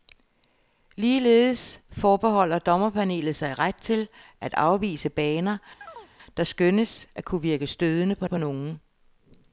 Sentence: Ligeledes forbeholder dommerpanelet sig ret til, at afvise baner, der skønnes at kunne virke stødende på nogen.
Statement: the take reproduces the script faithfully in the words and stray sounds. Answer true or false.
false